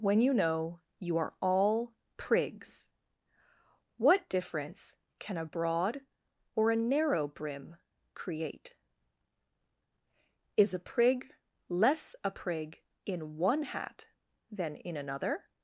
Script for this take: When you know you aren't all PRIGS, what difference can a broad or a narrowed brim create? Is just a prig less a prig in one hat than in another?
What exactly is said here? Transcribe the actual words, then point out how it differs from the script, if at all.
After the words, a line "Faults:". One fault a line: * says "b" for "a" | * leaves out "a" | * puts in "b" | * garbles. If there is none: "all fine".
When you know you are all PRIGS, what difference can a broad or a narrow brim create? Is a prig less a prig in one hat than in another?
Faults:
* says "are" for "aren't"
* says "narrow" for "narrowed"
* leaves out "just"